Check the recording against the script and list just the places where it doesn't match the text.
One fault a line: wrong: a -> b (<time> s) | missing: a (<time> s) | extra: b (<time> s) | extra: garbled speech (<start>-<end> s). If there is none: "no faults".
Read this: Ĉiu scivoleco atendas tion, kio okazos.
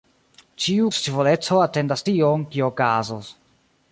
no faults